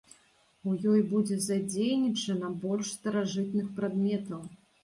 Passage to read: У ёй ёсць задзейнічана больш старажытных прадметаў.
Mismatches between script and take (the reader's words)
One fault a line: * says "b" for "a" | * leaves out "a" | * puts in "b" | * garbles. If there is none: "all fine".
* says "будзе" for "ёсць"